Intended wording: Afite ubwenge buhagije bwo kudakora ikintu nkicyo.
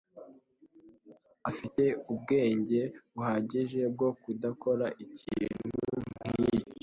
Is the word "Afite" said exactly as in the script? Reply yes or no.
yes